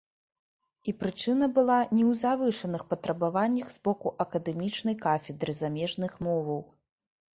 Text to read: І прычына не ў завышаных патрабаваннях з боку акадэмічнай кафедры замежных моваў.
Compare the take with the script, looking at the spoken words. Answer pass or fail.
fail